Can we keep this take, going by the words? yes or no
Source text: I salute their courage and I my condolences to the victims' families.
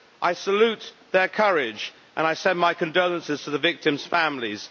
no